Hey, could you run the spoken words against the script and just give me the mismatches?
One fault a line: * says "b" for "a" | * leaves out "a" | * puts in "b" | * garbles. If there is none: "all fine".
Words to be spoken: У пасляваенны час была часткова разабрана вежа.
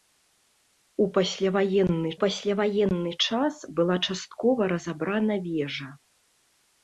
* puts in "пасляваенны"